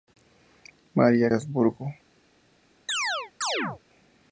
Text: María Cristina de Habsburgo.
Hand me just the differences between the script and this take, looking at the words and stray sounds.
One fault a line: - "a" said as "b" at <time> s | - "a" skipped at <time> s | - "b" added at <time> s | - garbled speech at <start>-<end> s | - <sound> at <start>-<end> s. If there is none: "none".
- "Cristina de" skipped at 1.3 s
- chirp at 2.9-3.8 s